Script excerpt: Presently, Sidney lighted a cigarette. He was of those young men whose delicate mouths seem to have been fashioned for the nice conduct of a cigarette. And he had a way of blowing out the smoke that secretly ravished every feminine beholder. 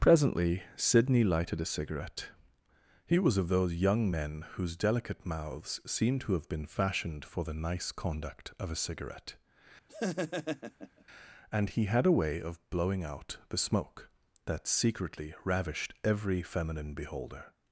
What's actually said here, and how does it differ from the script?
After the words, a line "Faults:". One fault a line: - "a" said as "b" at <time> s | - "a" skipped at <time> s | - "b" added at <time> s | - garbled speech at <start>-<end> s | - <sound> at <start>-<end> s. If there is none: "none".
Presently, Sidney lighted a cigarette. He was of those young men whose delicate mouths seem to have been fashioned for the nice conduct of a cigarette. And he had a way of blowing out the smoke that secretly ravished every feminine beholder.
Faults:
- laugh at 9.9-11.0 s